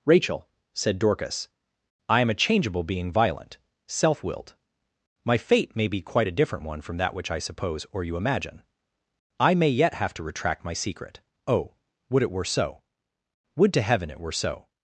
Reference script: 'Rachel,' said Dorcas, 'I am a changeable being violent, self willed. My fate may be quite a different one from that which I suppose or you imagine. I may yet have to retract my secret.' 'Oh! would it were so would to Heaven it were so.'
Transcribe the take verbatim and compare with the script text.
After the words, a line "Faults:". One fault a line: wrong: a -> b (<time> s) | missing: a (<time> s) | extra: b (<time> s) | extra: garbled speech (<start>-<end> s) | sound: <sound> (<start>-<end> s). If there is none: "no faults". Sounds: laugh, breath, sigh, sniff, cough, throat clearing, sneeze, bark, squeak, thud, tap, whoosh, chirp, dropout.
'Rachel,' said Dorcas, 'I am a changeable being violent, self willed. My fate may be quite a different one from that which I suppose or you imagine. I may yet have to retract my secret.' 'Oh! would it were so would to Heaven it were so.'
Faults:
no faults